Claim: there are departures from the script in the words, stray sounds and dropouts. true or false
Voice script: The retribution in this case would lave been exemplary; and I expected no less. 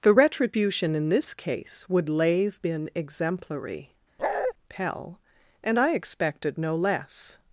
true